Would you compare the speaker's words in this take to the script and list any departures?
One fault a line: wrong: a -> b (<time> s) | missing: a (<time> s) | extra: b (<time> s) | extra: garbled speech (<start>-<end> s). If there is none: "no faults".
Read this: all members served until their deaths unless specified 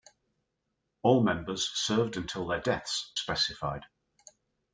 missing: unless (3.2 s)